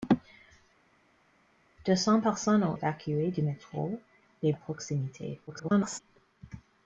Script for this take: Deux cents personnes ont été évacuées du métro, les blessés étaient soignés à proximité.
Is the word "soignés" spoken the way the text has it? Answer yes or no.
no